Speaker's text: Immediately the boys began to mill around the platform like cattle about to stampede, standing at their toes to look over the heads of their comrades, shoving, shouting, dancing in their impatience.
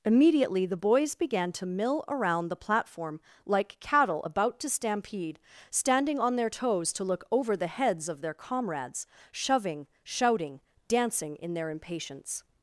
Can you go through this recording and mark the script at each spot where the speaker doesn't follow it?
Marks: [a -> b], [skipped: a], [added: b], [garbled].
Immediately the boys began to mill around the platform like cattle about to stampede, standing [at -> on] their toes to look over the heads of their comrades, shoving, shouting, dancing in their impatience.